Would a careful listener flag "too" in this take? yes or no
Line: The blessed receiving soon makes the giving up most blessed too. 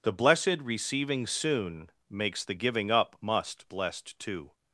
no